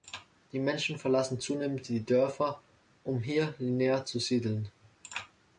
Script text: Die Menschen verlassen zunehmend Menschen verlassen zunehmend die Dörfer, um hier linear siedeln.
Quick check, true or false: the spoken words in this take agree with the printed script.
false